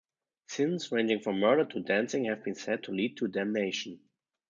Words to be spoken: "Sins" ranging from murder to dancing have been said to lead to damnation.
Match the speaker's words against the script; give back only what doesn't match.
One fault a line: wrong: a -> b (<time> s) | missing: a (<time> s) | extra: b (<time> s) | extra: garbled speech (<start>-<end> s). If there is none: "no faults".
no faults